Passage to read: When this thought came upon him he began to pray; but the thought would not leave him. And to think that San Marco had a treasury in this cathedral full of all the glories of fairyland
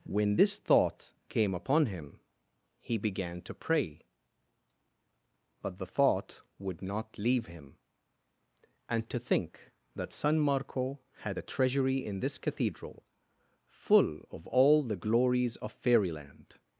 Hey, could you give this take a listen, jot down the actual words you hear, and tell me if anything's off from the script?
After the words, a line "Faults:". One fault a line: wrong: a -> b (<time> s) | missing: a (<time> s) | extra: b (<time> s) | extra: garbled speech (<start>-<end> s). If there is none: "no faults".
When this thought came upon him he began to pray; but the thought would not leave him. And to think that San Marco had a treasury in this cathedral full of all the glories of fairyland
Faults:
no faults